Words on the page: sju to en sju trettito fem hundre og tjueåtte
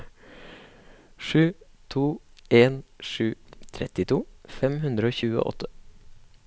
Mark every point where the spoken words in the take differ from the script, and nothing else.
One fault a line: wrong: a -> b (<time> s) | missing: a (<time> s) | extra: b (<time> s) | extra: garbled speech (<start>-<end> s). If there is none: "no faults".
no faults